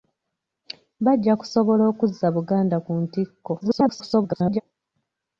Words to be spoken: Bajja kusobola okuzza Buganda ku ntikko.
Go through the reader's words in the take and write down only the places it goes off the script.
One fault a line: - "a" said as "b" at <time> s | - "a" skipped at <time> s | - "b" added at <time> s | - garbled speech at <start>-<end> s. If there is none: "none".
- garbled speech at 3.6-4.6 s